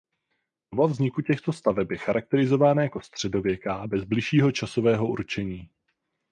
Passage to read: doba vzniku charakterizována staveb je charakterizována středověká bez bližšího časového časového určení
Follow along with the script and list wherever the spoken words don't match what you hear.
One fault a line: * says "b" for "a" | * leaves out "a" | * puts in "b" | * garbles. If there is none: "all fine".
* says "těchto" for "charakterizována"
* puts in "jako"
* leaves out "časového"